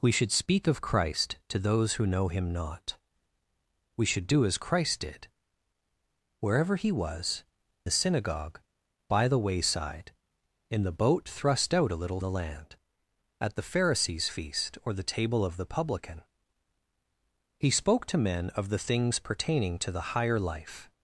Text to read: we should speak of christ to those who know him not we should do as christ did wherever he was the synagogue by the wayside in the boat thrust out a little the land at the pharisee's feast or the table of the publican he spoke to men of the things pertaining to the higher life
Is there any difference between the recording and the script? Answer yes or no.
no